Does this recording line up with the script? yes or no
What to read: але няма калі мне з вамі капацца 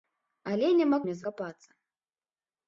no